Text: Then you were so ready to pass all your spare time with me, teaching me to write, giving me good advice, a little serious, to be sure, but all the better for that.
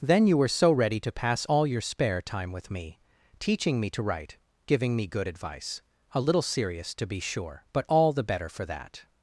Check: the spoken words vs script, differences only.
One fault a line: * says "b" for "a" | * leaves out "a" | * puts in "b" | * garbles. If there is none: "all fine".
all fine